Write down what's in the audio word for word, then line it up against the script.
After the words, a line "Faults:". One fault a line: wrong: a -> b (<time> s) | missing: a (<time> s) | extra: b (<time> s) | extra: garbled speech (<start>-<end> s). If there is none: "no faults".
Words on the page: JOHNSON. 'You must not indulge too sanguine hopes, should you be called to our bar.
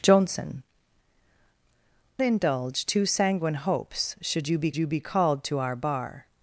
JOHNSON. 'Indulge too sanguine hopes, should you be you be called to our bar.
Faults:
missing: You must not (0.6 s)
extra: you be (4.8 s)